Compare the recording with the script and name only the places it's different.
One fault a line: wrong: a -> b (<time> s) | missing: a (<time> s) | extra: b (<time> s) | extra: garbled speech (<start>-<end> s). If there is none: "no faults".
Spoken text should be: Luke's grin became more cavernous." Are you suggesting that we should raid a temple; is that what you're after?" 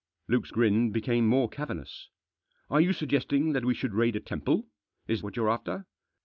missing: that (5.2 s)